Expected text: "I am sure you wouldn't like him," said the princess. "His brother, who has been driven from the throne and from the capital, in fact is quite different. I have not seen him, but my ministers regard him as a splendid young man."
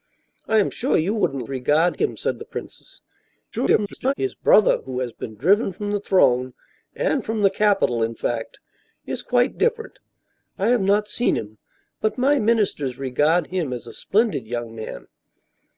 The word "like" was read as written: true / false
false